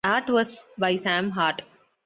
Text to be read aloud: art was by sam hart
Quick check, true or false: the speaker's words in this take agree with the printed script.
true